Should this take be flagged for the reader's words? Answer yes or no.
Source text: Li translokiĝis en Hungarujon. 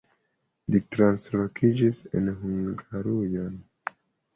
no